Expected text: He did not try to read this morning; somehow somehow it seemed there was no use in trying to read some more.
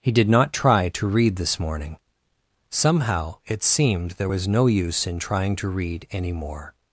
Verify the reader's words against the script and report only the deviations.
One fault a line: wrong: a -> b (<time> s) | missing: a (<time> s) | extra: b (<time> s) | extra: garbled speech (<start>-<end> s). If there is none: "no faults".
missing: somehow (3.4 s)
wrong: some -> any (6.1 s)